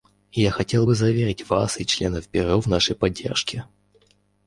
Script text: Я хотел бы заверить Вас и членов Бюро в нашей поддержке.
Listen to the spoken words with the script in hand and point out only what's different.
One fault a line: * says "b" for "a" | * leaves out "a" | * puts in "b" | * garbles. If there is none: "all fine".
all fine